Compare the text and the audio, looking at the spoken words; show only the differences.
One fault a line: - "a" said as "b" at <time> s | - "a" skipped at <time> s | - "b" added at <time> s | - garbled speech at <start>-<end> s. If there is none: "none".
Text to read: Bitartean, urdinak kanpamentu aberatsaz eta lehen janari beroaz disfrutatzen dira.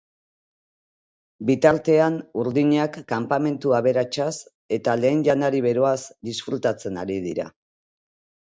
- "ari" added at 7.1 s